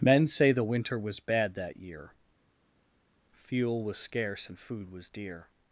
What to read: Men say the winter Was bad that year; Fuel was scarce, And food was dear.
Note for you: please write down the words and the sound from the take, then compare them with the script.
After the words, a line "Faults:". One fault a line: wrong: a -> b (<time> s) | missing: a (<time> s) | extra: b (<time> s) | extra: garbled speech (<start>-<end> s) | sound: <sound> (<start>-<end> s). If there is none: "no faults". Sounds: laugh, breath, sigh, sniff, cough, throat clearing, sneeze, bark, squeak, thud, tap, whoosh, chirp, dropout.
Men say the winter Was bad that year; Fuel was scarce, And food was dear.
Faults:
no faults